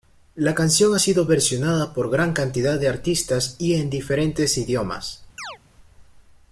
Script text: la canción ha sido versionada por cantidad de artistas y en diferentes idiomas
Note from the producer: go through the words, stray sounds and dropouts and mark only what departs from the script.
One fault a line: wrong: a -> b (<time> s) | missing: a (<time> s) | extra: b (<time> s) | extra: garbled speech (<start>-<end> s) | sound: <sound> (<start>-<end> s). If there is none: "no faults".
extra: gran (2.1 s)
sound: chirp (5.4-5.6 s)